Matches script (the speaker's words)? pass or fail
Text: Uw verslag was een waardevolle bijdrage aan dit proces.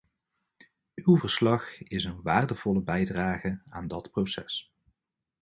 fail